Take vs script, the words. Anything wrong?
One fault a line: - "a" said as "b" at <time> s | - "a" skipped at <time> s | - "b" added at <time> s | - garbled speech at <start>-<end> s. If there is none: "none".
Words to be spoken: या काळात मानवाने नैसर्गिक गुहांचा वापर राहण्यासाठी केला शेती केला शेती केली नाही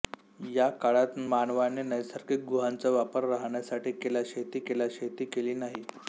none